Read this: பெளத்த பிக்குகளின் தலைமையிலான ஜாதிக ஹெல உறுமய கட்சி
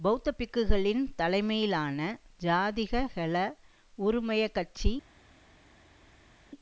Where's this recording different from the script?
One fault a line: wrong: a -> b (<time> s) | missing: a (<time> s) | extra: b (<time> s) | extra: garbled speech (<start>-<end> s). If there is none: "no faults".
no faults